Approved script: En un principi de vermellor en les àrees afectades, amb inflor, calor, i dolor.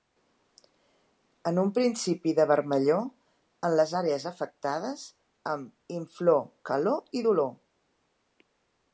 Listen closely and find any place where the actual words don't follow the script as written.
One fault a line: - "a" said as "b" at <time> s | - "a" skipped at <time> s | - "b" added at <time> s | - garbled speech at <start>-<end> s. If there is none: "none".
none